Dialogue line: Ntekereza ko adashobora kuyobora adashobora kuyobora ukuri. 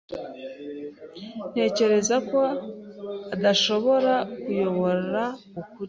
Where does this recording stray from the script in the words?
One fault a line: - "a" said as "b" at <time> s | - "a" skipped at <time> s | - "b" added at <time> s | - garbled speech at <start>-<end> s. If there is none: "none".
- "adashobora kuyobora" skipped at 5.2 s